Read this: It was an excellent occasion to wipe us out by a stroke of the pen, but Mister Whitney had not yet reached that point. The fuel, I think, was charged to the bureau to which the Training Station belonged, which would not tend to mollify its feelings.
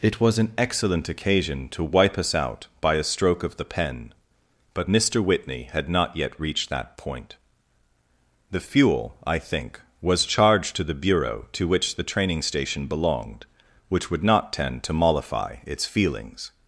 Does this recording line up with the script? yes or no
yes